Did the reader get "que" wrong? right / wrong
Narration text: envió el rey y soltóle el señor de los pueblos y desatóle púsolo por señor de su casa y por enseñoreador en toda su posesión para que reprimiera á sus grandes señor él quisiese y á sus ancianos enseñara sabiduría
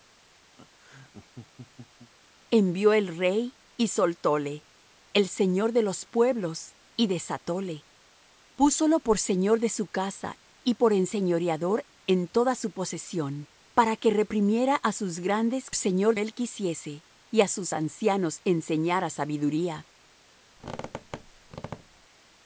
right